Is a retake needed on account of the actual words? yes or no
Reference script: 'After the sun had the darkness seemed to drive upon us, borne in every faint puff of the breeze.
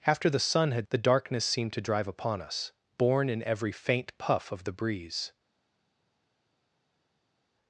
no